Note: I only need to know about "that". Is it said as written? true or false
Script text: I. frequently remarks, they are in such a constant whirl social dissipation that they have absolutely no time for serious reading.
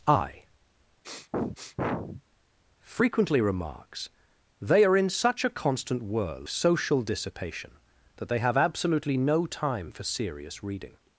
true